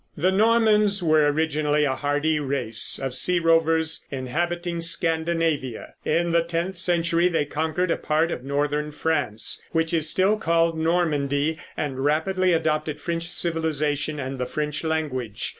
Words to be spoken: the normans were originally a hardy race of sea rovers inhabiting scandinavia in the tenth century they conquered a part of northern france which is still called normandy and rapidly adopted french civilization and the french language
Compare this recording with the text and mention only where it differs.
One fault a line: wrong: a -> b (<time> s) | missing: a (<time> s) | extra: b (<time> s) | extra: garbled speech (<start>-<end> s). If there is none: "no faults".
no faults